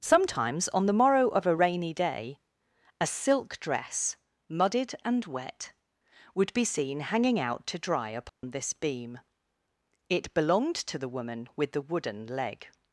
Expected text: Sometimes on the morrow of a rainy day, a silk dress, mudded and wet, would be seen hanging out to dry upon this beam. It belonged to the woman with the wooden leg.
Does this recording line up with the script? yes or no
yes